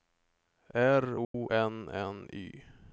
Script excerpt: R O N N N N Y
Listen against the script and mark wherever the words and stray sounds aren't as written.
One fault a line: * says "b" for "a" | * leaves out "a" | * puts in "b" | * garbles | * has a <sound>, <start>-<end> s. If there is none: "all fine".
* has a dropout, 1.2-1.3 s
* leaves out "N N"